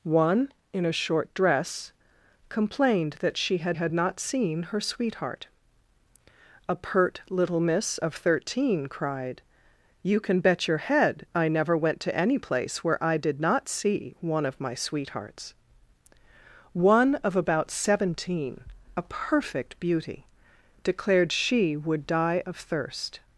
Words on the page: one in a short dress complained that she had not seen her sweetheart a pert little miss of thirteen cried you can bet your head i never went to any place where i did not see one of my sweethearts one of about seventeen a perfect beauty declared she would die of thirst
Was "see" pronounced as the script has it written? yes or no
yes